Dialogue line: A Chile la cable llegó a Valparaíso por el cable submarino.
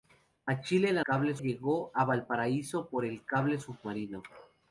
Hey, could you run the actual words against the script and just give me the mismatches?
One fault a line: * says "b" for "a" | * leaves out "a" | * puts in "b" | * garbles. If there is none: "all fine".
all fine